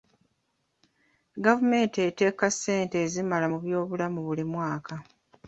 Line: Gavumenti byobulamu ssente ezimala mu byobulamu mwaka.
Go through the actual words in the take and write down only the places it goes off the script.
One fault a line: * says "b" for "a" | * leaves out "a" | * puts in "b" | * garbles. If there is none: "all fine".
* says "eteeka" for "byobulamu"
* puts in "buli"